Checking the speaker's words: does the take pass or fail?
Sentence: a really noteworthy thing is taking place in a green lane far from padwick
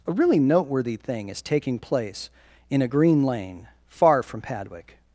pass